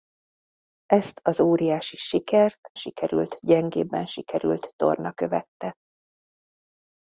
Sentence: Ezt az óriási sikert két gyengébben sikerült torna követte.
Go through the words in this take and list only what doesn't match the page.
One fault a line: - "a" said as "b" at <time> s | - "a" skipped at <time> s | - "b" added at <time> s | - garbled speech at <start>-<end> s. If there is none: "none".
- "két" said as "sikerült" at 2.7 s